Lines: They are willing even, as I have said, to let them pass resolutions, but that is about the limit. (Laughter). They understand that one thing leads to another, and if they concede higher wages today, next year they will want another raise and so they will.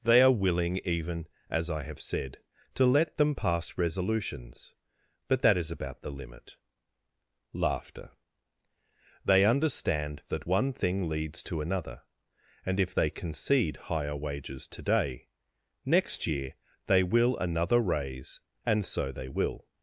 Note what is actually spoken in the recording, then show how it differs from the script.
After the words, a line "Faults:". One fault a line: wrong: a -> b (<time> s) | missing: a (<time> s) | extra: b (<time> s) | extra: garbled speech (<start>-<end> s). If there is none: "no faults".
They are willing even, as I have said, to let them pass resolutions, but that is about the limit. (Laughter). They understand that one thing leads to another, and if they concede higher wages today, next year they will another raise and so they will.
Faults:
missing: want (17.4 s)